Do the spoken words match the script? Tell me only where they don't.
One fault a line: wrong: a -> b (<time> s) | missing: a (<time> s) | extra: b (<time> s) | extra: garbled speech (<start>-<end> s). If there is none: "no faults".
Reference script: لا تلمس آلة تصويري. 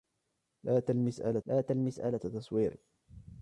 extra: لا تلمس آلة (1.5 s)